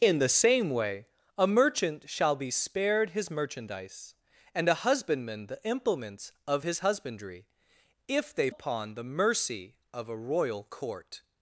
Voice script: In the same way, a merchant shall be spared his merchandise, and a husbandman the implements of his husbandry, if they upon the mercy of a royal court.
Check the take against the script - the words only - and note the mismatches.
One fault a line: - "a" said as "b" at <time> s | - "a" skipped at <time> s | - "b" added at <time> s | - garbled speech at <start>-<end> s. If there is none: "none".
none